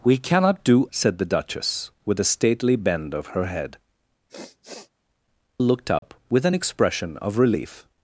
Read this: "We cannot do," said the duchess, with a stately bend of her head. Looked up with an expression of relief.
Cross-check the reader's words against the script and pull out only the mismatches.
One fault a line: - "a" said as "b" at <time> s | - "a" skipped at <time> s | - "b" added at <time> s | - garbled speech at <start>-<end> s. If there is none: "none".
none